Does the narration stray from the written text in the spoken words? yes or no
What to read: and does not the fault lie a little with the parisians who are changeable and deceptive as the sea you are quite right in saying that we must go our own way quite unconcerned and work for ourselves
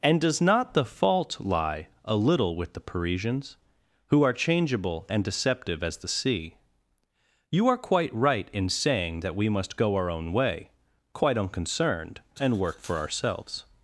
no